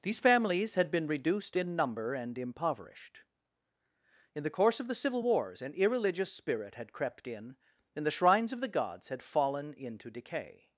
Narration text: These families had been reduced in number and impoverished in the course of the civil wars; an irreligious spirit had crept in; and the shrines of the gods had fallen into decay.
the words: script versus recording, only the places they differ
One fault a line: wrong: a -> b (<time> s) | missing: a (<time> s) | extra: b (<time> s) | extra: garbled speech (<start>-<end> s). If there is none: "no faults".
no faults